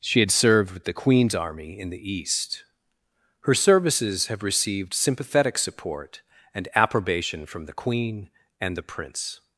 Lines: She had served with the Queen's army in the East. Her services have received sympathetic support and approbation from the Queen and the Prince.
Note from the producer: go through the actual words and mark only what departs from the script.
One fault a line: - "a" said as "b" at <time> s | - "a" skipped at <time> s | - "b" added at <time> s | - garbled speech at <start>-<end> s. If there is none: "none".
none